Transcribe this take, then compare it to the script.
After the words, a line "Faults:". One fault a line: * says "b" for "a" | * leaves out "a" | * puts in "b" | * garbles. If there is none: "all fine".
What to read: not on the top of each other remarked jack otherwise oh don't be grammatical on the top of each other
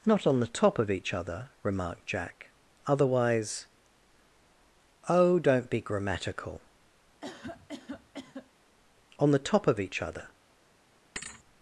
not on the top of each other remarked jack otherwise oh don't be grammatical on the top of each other
Faults:
all fine